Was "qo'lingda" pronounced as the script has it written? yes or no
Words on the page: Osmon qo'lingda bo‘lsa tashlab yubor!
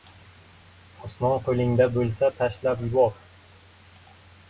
yes